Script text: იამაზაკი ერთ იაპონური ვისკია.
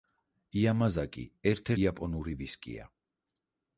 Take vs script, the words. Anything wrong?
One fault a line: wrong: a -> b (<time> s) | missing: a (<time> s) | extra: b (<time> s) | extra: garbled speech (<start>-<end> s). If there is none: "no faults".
no faults